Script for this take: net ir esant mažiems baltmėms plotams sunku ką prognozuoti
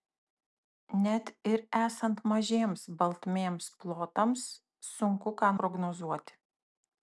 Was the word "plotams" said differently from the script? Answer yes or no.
no